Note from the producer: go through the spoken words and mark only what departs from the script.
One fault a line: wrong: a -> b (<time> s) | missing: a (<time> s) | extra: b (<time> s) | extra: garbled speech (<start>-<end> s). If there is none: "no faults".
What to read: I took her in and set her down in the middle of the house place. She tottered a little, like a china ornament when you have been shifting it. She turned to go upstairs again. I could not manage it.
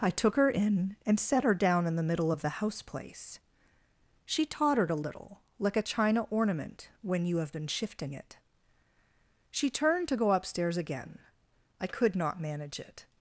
no faults